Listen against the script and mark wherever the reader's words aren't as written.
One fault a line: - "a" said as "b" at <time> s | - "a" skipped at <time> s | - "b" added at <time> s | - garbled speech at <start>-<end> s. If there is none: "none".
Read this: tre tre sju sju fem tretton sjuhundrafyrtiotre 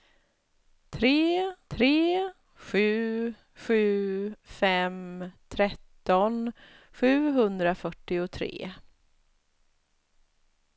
none